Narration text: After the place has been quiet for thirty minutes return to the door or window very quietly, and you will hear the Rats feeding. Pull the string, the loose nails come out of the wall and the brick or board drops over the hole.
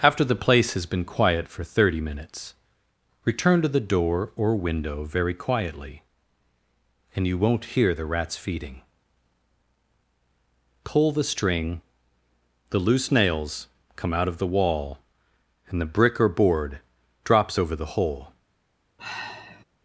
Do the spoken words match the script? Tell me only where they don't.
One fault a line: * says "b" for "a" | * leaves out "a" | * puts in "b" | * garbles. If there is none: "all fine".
* says "won't" for "will"